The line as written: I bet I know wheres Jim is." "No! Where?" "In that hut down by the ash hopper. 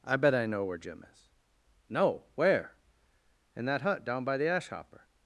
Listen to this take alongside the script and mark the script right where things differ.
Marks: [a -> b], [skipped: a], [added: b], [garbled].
I bet I know [wheres -> where] Jim is." "No! Where?" "In that hut down by the ash hopper.